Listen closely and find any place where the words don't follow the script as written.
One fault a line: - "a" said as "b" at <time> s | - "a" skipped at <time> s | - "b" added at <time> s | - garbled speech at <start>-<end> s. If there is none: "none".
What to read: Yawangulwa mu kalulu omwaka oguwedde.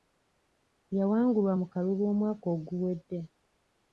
none